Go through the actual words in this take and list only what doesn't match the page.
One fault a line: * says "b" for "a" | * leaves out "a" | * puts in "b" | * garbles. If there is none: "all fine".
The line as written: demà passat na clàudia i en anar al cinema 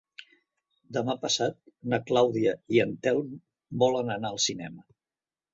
* puts in "telm volen"